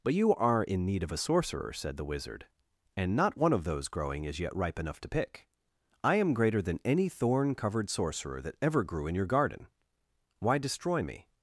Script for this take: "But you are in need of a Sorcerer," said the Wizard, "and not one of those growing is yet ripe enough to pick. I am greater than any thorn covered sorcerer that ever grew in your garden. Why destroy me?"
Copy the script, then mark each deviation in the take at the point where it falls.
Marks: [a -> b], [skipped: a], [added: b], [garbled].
"But you are in need of a Sorcerer," said the Wizard, "and not one of those growing is yet ripe enough to pick. I am greater than any thorn covered sorcerer that ever grew in your garden. Why destroy me?"